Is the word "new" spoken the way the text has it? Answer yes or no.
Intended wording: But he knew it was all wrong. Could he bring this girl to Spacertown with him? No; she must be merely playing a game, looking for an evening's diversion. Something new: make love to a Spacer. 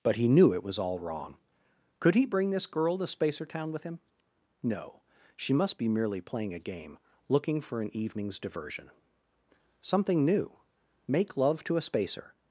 yes